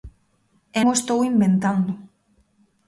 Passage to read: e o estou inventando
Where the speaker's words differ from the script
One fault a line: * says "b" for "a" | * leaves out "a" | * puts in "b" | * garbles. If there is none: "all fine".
all fine